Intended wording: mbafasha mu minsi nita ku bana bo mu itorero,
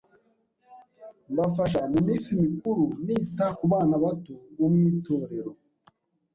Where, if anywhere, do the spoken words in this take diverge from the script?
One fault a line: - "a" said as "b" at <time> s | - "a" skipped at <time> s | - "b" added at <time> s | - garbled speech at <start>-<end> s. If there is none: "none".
- "mikuru" added at 2.4 s
- "bato" added at 4.0 s